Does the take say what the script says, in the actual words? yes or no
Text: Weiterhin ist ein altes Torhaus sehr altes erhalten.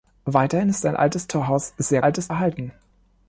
yes